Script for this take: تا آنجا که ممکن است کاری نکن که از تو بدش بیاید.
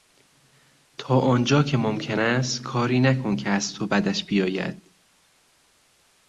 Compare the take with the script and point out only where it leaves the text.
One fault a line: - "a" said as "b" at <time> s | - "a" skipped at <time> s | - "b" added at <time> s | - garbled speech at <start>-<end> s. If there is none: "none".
none